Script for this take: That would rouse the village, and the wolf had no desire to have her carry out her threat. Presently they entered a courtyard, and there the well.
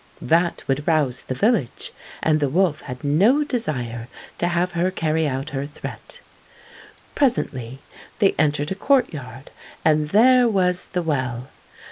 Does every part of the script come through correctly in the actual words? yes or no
no